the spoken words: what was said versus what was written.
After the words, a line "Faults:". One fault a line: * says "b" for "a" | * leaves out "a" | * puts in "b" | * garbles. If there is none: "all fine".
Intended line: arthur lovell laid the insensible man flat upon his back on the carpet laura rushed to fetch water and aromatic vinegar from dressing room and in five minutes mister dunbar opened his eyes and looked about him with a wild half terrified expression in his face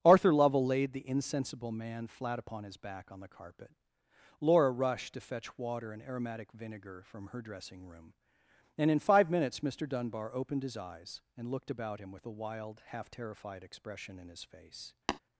arthur lovell laid the insensible man flat upon his back on the carpet laura rushed to fetch water and aromatic vinegar from her dressing room and in five minutes mister dunbar opened his eyes and looked about him with a wild half terrified expression in his face
Faults:
* puts in "her"